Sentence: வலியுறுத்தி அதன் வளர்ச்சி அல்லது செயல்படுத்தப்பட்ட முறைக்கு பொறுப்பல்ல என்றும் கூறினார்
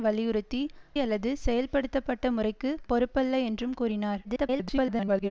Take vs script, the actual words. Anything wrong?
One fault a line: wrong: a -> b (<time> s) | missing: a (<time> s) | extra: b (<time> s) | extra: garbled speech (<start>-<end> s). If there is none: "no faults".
missing: அதன் வளர்ச்சி (0.6 s)
extra: garbled speech (4.2-5.3 s)